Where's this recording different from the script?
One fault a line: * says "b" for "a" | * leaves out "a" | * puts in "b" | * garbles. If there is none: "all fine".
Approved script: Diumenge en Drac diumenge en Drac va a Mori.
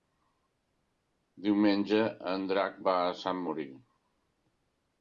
* leaves out "diumenge en Drac"
* puts in "Sant"